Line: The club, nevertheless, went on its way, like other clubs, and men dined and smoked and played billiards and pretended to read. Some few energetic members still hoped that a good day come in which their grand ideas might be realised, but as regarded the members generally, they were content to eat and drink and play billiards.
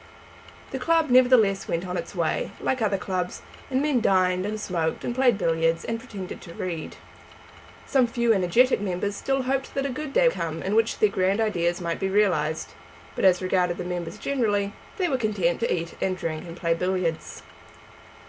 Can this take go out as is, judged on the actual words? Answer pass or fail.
pass